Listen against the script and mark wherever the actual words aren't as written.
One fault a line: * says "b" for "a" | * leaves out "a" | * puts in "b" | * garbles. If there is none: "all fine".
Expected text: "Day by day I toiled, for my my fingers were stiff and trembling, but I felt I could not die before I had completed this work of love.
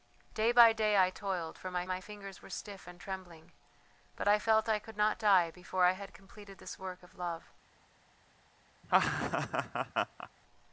all fine